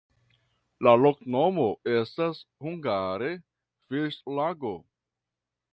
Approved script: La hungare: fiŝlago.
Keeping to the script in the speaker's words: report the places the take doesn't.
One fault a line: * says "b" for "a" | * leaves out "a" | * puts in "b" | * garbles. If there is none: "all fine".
* puts in "loknomo estas"